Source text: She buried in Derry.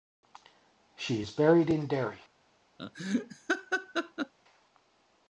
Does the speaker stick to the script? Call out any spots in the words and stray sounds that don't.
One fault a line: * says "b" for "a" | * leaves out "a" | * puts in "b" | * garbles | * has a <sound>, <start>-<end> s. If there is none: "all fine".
* puts in "is"
* has a laugh, 2.8-4.3 s